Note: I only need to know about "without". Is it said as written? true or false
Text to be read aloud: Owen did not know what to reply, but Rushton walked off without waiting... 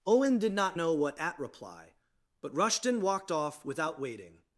true